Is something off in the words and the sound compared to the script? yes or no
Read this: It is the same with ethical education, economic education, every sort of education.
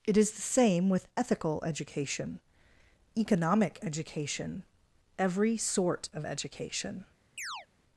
yes